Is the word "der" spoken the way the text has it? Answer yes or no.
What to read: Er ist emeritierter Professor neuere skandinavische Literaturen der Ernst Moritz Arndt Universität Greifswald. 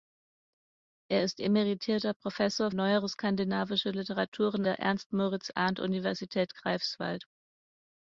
yes